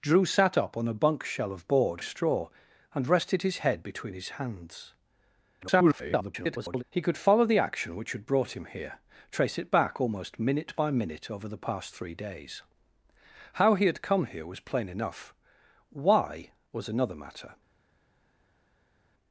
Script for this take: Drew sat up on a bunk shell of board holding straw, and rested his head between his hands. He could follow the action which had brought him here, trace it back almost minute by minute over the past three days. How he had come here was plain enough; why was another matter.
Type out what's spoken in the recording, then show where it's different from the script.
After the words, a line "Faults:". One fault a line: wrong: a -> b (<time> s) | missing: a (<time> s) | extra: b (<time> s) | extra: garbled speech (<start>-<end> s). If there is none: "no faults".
Drew sat up on a bunk shell of board straw, and rested his head between his hands. [garbled] He could follow the action which had brought him here, trace it back almost minute by minute over the past three days. How he had come here was plain enough; why was another matter.
Faults:
missing: holding (2.0 s)
extra: garbled speech (5.6-6.8 s)